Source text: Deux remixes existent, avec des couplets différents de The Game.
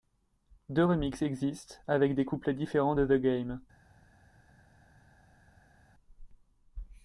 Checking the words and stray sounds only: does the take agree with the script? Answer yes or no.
yes